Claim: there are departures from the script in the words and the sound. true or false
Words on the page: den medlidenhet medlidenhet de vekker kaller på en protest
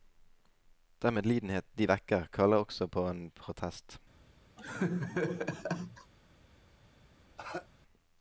true